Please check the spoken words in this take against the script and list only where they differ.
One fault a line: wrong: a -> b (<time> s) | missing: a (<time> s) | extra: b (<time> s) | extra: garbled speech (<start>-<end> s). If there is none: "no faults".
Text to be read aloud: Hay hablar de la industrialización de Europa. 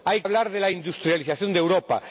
no faults